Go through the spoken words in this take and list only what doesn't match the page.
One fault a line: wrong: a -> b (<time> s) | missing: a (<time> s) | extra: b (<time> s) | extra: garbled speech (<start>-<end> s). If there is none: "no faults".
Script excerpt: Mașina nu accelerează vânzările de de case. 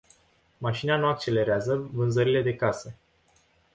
missing: de (2.6 s)